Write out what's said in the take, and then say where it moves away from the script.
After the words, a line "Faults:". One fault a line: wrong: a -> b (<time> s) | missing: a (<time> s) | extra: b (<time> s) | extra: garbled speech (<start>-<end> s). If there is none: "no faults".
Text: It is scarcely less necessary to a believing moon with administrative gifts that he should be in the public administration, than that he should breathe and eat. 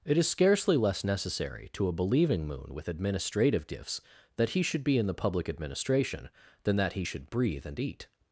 It is scarcely less necessary to a believing moon with administrative gifts that he should be in the public administration, than that he should breathe and eat.
Faults:
no faults